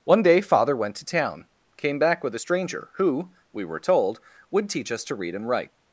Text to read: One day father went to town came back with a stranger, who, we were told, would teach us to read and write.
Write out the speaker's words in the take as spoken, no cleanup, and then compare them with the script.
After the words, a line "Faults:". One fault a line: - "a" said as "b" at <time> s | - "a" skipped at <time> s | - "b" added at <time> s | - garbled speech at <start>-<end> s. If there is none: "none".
One day father went to town came back with a stranger, who, we were told, would teach us to read and write.
Faults:
none